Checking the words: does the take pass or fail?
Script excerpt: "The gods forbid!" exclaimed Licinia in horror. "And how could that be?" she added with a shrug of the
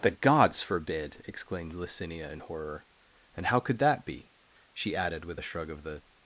pass